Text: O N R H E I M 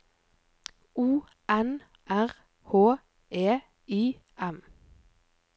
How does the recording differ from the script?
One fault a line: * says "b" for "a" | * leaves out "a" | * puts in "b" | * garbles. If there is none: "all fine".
all fine